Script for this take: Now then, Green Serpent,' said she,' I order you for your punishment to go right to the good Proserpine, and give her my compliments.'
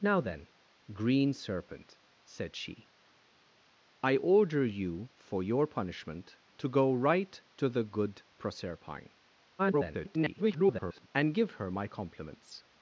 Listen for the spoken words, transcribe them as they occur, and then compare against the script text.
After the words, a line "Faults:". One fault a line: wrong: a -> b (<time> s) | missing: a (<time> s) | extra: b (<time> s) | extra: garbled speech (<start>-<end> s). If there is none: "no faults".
Now then, Green Serpent,' said she,' I order you for your punishment to go right to the good Proserpine, [garbled] and give her my compliments.'
Faults:
extra: garbled speech (9.6-11.1 s)